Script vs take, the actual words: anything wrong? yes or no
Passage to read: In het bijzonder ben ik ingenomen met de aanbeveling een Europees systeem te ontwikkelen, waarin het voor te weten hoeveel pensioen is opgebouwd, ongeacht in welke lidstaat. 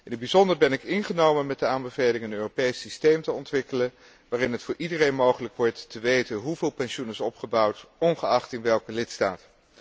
yes